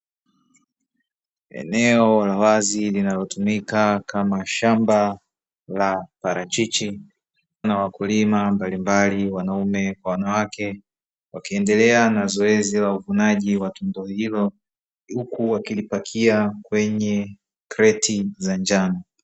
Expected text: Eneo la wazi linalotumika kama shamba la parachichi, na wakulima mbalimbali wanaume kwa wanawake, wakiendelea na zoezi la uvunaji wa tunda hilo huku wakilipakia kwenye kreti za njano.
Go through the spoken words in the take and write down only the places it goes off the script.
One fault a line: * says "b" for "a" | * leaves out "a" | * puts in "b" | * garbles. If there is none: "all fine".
all fine